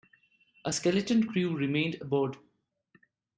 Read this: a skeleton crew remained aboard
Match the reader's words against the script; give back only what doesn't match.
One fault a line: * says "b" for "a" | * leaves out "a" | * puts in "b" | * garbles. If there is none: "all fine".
all fine